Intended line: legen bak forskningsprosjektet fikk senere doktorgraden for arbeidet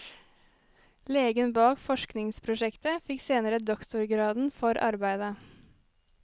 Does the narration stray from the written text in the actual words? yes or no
no